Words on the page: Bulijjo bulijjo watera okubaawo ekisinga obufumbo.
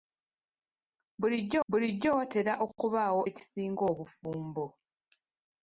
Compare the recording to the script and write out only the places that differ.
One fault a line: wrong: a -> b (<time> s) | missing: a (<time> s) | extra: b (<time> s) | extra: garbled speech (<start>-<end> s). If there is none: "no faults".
no faults